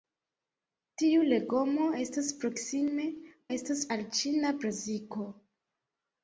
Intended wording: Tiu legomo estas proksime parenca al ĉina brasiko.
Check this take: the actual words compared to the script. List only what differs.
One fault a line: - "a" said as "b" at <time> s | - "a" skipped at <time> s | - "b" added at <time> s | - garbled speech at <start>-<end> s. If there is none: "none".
- "parenca" said as "estas" at 3.6 s